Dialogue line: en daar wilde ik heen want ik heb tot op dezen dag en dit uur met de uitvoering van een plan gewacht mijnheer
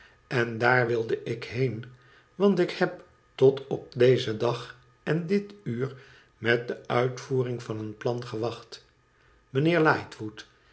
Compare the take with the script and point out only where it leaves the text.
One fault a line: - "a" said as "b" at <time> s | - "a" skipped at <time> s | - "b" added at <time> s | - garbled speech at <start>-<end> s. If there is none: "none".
none